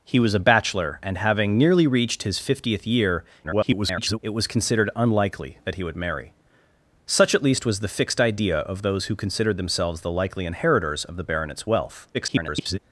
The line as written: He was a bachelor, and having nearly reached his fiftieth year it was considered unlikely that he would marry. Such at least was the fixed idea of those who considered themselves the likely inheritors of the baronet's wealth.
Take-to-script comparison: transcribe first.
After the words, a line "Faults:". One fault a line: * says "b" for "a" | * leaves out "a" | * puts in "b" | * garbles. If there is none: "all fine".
He was a bachelor, and having nearly reached his fiftieth year [garbled] it was considered unlikely that he would marry. Such at least was the fixed idea of those who considered themselves the likely inheritors of the baronet's wealth. [garbled]
Faults:
* garbles
* garbles